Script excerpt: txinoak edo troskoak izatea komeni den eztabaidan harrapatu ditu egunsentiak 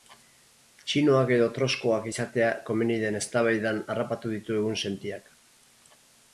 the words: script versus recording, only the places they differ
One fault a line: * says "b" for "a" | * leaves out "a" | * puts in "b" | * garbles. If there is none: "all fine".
all fine